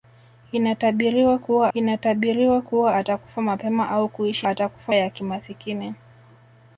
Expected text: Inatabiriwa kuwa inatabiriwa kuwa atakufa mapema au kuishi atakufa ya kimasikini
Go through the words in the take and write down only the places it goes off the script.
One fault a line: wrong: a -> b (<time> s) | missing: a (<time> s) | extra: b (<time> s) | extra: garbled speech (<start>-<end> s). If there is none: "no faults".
no faults